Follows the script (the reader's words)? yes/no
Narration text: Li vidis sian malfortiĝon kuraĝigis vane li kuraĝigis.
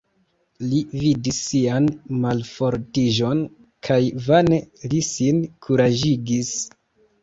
no